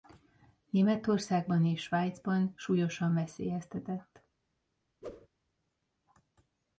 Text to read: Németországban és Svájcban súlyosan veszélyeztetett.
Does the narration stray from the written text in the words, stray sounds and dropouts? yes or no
yes